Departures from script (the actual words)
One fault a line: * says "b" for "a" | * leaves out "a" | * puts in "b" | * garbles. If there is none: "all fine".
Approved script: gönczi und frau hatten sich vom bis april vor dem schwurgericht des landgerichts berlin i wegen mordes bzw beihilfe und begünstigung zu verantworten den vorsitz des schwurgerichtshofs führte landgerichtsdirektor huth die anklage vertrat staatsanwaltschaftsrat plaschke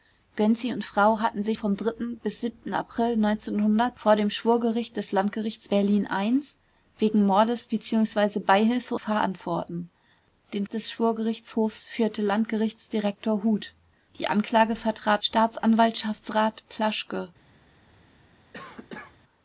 * leaves out "und begünstigung zu"
* leaves out "vorsitz"